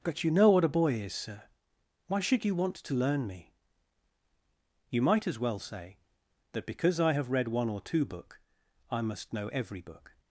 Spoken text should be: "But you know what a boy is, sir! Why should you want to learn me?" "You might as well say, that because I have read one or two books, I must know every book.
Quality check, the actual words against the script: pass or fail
fail